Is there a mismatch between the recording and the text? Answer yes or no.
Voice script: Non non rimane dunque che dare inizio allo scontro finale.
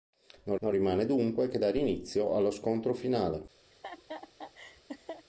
no